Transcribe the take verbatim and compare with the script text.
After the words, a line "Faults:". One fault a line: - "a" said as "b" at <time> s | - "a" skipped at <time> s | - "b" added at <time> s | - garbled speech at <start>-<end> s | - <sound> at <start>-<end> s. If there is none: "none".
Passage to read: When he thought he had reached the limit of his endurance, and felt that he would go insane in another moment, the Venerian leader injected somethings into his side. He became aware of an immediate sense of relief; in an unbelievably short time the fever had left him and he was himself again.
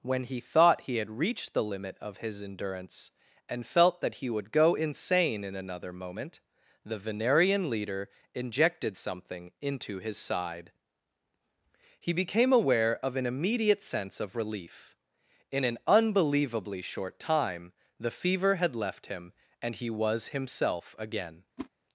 When he thought he had reached the limit of his endurance, and felt that he would go insane in another moment, the Venerian leader injected something into his side. He became aware of an immediate sense of relief; in an unbelievably short time the fever had left him and he was himself again.
Faults:
- "somethings" said as "something" at 8.9 s
- whoosh at 21.6-21.7 s